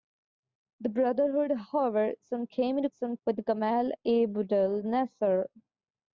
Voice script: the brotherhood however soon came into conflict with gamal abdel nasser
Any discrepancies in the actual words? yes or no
yes